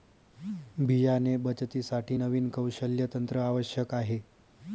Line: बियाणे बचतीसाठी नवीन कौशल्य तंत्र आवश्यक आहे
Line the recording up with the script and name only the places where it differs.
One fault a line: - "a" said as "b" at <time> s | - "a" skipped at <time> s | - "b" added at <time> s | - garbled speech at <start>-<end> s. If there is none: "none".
none